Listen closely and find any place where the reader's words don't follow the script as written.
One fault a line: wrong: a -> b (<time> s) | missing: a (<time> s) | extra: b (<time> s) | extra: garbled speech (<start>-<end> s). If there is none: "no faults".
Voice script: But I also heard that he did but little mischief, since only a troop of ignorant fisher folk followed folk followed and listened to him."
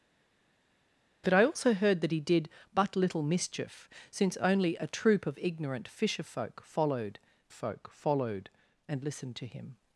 no faults